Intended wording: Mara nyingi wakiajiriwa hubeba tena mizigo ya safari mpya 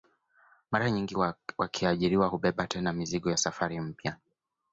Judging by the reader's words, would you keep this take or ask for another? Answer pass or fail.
pass